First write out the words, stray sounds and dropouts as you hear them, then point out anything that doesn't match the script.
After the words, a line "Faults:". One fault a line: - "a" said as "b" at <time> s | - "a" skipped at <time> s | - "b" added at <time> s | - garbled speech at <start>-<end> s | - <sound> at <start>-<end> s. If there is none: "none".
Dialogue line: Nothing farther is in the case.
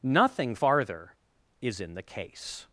Nothing farther is in the case.
Faults:
none